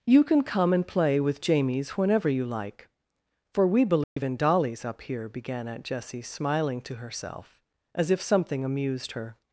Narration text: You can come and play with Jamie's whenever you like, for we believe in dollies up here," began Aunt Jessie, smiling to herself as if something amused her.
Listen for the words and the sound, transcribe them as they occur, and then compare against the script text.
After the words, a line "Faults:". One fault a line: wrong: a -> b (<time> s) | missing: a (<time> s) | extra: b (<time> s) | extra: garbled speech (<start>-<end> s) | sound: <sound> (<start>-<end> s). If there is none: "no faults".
You can come and play with Jamie's whenever you like, for we believe in dollies up here," began Aunt Jessie, smiling to herself as if something amused her.
Faults:
sound: dropout (4.0-4.2 s)